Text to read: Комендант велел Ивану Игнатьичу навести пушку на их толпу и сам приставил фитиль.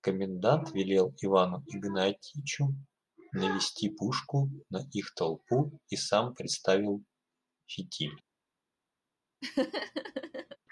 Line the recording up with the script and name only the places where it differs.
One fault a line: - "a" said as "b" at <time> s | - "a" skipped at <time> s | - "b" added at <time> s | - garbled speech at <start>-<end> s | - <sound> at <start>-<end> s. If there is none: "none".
- laugh at 9.4-10.6 s